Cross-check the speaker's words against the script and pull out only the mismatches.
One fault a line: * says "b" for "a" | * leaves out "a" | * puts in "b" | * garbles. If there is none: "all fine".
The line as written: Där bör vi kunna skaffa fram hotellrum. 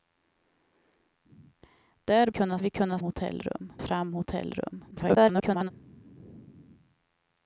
* says "kunna" for "bör"
* says "hotellrum" for "skaffa"
* garbles